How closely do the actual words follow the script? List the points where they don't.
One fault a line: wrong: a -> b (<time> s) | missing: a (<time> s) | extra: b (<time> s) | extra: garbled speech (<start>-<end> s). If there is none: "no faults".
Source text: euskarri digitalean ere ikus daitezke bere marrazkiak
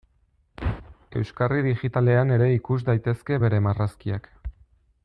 no faults